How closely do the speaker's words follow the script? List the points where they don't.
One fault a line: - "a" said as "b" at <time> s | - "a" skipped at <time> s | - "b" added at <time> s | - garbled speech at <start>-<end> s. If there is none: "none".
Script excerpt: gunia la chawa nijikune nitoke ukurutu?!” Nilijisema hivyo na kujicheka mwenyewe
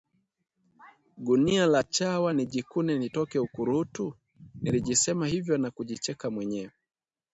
none